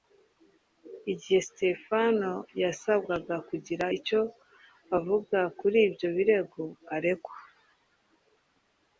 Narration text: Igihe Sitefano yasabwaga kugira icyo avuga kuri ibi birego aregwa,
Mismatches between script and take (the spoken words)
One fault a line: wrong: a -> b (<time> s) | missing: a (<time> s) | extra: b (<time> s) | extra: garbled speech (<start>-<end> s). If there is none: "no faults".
wrong: ibi -> ibyo (5.9 s)